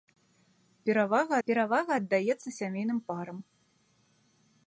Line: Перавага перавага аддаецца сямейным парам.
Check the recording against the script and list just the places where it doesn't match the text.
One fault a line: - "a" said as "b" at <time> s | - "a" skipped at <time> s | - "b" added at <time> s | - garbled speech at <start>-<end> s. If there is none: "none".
none